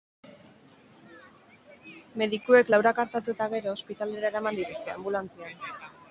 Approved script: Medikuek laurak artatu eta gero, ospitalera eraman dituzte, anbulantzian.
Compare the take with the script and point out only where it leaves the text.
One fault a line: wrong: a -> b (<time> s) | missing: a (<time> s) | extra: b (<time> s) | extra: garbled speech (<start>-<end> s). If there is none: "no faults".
no faults